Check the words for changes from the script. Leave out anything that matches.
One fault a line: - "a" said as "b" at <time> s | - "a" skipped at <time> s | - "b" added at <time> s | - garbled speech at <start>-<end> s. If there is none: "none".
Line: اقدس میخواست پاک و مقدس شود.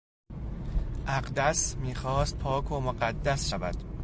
none